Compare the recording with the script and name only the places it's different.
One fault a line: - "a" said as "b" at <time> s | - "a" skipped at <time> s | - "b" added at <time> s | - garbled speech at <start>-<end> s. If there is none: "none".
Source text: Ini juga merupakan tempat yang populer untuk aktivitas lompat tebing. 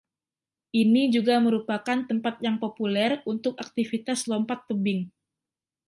none